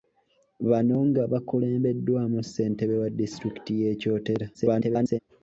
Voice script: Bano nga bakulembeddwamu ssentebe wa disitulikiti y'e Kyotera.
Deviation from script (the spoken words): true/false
true